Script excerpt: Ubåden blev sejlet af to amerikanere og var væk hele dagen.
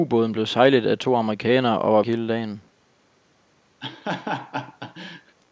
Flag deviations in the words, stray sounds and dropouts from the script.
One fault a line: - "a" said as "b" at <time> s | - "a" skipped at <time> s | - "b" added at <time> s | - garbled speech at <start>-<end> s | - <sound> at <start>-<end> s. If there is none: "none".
- "væk" skipped at 2.0 s
- laugh at 3.8-5.4 s